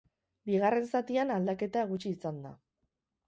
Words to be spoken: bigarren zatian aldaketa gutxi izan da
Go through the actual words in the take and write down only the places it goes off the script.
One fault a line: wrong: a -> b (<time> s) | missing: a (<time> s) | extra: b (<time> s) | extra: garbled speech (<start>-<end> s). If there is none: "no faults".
no faults